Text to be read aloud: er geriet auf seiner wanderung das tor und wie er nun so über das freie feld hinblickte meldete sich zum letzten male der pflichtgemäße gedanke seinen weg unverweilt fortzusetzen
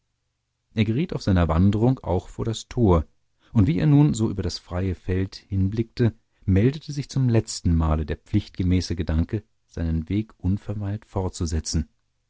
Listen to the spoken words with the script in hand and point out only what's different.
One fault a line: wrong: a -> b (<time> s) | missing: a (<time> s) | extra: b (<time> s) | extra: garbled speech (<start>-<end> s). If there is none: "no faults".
extra: auch vor (2.0 s)